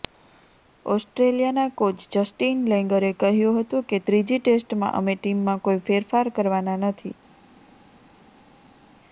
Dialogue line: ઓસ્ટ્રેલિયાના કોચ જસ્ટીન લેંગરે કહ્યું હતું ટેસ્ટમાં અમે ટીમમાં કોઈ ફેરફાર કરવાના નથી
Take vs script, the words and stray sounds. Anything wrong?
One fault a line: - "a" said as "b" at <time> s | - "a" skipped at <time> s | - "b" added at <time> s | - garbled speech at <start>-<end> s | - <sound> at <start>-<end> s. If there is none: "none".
- "કે ત્રીજી" added at 3.9 s